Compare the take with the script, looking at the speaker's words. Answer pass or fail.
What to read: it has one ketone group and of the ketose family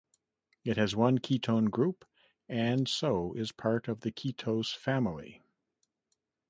fail